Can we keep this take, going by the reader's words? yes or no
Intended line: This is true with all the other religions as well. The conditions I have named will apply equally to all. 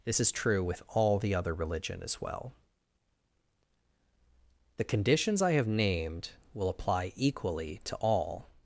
no